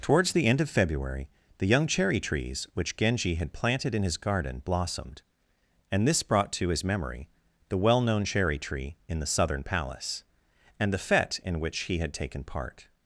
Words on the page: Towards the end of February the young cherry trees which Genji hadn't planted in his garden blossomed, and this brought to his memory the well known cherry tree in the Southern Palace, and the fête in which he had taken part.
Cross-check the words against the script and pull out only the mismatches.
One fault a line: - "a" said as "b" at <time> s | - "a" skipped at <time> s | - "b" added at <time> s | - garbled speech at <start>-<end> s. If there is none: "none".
- "hadn't" said as "had" at 3.4 s